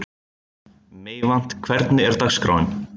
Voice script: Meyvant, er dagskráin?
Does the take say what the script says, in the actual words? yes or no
no